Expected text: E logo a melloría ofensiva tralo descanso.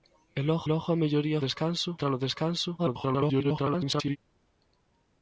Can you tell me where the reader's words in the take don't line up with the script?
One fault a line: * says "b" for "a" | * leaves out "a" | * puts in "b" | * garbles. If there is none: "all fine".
* puts in "logo"
* says "descanso" for "ofensiva"
* garbles